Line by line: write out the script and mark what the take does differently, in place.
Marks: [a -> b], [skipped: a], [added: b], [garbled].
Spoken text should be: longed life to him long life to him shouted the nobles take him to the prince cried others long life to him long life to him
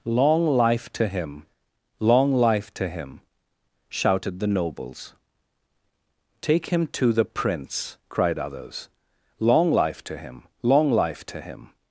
[longed -> long] life to him long life to him shouted the nobles take him to the prince cried others long life to him long life to him